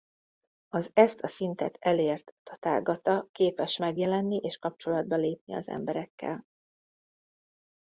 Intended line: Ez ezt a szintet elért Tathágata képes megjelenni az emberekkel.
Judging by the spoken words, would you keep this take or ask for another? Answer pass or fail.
fail